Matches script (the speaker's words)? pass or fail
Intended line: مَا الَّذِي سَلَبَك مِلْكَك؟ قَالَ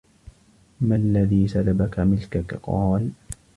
pass